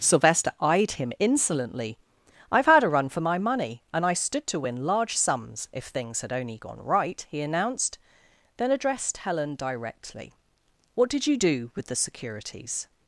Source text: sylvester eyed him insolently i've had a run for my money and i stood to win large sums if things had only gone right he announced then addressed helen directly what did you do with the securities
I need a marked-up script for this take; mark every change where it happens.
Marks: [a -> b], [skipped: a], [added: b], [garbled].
sylvester eyed him insolently i've had a run for my money and i stood to win large sums if things had only gone right he announced then addressed helen directly what did you do with the securities